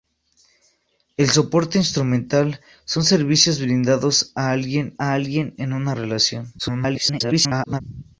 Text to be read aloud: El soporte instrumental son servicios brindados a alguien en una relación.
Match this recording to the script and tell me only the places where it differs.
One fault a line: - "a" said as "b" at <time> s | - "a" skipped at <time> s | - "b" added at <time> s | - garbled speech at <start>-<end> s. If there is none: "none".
- "a alguien" added at 5.0 s
- garbled speech at 6.6-7.8 s